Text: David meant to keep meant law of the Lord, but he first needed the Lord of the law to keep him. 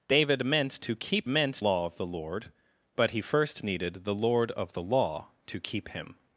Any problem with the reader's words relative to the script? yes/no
no